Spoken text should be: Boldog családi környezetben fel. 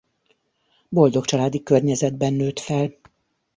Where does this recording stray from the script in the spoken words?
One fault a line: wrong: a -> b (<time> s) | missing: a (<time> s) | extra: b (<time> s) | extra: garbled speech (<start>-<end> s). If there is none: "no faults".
extra: nőtt (2.3 s)